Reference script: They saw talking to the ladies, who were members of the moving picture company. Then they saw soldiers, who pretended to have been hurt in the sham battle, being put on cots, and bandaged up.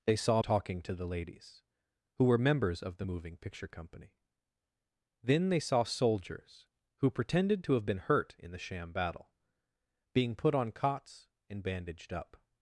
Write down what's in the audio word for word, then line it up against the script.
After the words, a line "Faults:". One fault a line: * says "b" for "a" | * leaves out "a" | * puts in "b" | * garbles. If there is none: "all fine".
They saw talking to the ladies, who were members of the moving picture company. Then they saw soldiers, who pretended to have been hurt in the sham battle, being put on cots, and bandaged up.
Faults:
all fine